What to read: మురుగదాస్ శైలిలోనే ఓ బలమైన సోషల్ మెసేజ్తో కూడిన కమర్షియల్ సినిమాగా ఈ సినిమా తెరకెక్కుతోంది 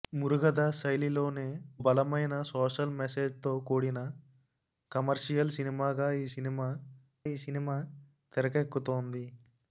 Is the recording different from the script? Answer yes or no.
yes